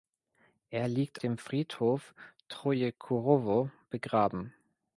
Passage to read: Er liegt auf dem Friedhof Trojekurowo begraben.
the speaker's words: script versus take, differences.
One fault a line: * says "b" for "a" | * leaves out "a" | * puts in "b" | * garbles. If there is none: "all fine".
* leaves out "auf"